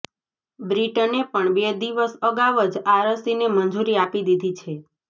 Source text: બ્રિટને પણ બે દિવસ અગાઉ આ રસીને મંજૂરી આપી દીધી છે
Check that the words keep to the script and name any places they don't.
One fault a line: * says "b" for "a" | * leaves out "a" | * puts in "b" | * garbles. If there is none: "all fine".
* puts in "જ"